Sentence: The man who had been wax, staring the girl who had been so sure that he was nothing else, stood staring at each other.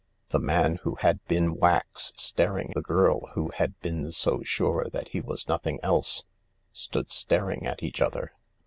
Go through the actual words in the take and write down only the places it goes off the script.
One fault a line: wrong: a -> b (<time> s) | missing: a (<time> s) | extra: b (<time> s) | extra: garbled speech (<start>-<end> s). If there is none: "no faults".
no faults